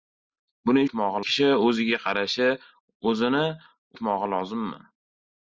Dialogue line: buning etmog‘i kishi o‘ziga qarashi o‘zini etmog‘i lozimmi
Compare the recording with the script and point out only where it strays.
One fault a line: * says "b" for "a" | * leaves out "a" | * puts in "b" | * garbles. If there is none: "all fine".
all fine